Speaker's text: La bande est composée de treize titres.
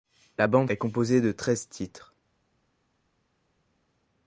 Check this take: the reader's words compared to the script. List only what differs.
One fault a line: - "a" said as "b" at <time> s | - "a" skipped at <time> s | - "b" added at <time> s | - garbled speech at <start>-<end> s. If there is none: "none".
none